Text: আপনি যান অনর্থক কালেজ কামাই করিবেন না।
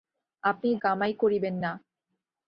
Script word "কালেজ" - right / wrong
wrong